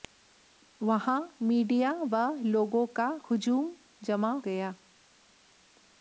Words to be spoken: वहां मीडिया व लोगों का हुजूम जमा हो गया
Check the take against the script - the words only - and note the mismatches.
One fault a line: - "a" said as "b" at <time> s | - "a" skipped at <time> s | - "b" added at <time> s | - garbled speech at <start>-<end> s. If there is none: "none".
- "हो" skipped at 4.3 s